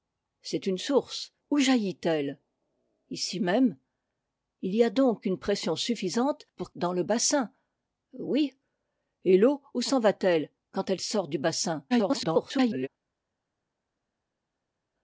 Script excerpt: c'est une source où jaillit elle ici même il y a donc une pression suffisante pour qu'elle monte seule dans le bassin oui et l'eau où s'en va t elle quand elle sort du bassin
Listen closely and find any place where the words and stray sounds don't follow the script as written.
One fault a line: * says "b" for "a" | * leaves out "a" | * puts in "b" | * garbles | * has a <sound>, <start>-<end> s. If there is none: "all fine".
* leaves out "qu'elle monte seule"
* garbles